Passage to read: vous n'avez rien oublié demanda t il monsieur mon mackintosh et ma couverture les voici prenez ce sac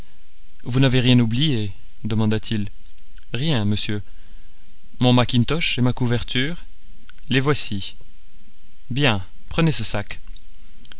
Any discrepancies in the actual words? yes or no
yes